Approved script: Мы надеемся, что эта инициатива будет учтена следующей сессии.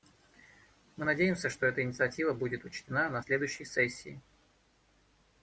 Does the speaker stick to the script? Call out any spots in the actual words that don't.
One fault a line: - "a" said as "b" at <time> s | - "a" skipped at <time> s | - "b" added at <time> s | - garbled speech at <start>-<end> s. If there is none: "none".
- "на" added at 3.1 s